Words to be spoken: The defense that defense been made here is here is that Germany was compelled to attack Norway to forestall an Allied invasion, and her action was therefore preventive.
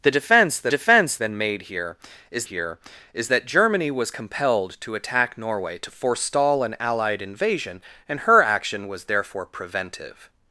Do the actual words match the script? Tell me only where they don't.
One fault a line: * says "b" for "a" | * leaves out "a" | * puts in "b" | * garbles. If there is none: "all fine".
all fine